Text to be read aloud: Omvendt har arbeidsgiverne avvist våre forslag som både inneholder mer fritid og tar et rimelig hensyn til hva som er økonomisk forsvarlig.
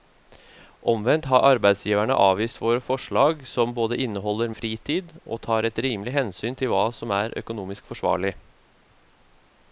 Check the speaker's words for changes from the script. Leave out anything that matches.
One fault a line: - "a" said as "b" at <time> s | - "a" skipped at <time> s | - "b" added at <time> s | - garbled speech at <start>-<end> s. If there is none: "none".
- "mer" skipped at 4.5 s